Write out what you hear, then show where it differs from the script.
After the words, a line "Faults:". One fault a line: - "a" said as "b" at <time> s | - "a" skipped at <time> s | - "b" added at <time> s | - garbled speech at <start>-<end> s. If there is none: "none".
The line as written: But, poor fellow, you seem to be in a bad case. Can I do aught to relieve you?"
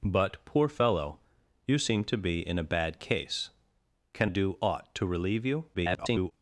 But, poor fellow, you seem to be in a bad case. Can do aught to relieve you?" [garbled]
Faults:
- "I" skipped at 4.3 s
- garbled speech at 5.7-6.3 s